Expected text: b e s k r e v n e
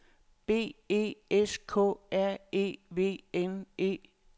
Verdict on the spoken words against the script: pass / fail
pass